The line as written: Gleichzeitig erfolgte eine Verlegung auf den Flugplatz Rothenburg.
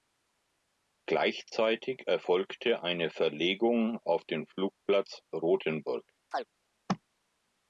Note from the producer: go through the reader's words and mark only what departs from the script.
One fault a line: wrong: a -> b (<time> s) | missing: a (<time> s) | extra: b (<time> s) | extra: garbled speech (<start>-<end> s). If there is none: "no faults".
no faults